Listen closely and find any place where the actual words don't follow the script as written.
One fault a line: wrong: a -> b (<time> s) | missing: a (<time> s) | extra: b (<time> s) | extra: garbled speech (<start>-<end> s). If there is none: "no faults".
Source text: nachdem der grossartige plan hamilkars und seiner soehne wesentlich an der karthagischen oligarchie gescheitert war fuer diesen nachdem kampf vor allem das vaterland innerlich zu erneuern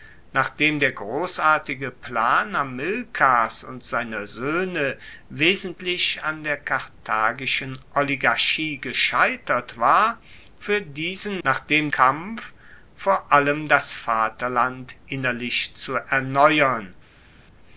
no faults